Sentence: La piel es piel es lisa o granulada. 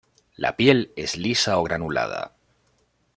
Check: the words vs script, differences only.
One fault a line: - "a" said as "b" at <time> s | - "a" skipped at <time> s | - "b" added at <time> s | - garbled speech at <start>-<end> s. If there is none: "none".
- "piel es" skipped at 1.1 s